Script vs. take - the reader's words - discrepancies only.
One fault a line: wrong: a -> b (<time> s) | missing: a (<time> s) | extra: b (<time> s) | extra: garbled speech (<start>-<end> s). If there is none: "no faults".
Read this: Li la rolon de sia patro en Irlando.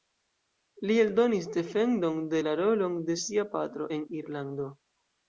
extra: eldonis defendon de (1.0 s)